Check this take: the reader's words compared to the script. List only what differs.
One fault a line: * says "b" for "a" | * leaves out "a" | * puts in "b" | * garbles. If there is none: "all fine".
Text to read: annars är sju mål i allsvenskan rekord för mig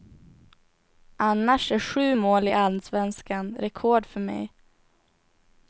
all fine